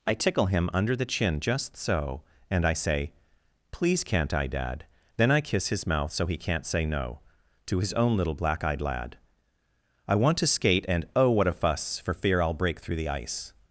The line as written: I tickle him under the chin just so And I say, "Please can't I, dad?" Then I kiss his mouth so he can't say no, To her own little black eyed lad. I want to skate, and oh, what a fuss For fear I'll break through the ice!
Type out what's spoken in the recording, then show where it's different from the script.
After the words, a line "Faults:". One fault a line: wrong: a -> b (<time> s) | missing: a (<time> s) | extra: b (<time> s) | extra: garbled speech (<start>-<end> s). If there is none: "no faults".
I tickle him under the chin just so And I say, "Please can't I, dad?" Then I kiss his mouth so he can't say no, To his own little black eyed lad. I want to skate, and oh, what a fuss For fear I'll break through the ice!
Faults:
wrong: her -> his (7.8 s)